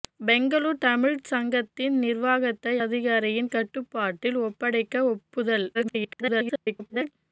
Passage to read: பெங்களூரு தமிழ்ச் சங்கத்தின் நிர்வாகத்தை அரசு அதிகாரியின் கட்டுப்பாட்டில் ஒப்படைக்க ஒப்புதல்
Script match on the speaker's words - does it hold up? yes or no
no